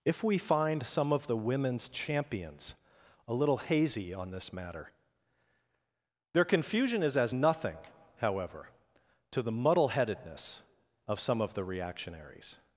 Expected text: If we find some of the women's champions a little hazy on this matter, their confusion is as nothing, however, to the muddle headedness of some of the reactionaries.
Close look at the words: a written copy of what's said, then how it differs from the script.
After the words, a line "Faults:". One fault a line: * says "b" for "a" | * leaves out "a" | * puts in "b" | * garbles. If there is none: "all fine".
If we find some of the women's champions a little hazy on this matter, their confusion is as nothing, however, to the muddle headedness of some of the reactionaries.
Faults:
all fine